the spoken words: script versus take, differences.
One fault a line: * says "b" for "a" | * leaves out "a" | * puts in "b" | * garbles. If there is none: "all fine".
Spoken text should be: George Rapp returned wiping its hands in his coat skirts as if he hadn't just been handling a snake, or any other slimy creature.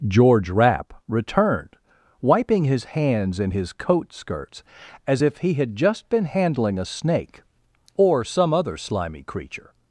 * says "his" for "its"
* says "had" for "hadn't"
* says "some" for "any"